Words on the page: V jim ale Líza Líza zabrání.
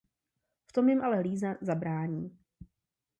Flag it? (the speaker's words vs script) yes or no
yes